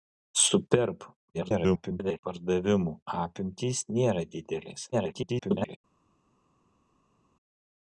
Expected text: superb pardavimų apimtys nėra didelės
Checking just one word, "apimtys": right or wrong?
right